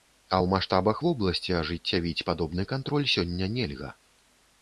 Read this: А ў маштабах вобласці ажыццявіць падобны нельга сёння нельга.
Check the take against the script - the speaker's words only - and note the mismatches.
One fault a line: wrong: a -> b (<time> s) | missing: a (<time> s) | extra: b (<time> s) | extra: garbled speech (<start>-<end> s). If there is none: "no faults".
wrong: нельга -> кантроль (2.7 s)